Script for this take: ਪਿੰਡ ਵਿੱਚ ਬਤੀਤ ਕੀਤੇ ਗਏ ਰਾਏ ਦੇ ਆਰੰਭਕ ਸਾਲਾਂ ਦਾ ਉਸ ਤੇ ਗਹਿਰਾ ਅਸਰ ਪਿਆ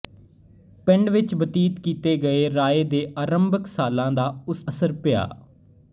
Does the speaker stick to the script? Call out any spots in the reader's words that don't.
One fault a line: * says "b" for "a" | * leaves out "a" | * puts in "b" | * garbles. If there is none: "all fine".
* leaves out "ਤੇ ਗਹਿਰਾ"